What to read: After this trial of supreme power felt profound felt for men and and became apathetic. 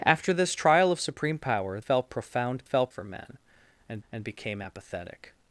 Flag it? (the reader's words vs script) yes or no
no